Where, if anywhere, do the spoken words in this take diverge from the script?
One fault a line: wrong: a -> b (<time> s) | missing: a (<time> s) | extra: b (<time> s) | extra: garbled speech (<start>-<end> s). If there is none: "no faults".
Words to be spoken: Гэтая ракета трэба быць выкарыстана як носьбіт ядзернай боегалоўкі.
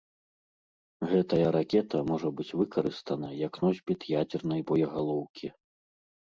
wrong: трэба -> можа (2.1 s)